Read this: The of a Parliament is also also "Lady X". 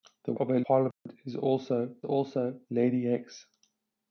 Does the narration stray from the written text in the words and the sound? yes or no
yes